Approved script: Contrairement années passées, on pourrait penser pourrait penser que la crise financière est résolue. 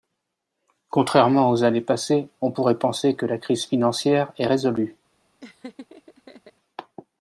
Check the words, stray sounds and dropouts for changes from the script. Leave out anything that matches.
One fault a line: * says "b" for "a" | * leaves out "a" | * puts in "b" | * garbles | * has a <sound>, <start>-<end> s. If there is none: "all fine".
* puts in "aux"
* leaves out "pourrait penser"
* has a laugh, 5.4-6.5 s